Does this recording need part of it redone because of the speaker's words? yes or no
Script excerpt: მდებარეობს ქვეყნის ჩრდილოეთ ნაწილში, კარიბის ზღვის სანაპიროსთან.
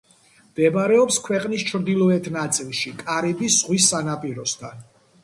no